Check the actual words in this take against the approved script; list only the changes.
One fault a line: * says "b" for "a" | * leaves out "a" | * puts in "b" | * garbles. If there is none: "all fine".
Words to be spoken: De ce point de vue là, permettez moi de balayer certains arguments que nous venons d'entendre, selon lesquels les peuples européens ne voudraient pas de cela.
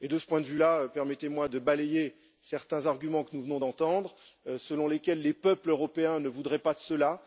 all fine